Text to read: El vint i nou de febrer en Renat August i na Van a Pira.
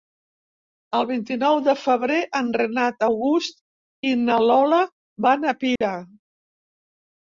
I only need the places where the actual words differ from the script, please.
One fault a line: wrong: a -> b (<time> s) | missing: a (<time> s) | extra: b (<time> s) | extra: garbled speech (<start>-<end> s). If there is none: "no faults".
extra: Lola (4.5 s)